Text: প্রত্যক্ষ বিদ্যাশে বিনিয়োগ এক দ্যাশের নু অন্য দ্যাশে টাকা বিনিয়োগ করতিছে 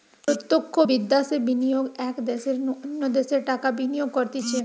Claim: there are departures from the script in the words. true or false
false